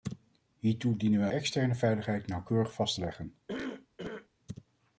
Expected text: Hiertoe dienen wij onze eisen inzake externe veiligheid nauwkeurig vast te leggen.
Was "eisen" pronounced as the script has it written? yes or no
no